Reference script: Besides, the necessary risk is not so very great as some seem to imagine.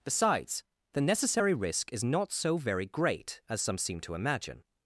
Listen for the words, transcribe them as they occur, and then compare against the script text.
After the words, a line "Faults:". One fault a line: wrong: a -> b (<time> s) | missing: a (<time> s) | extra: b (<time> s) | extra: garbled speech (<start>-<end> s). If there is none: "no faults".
Besides, the necessary risk is not so very great as some seem to imagine.
Faults:
no faults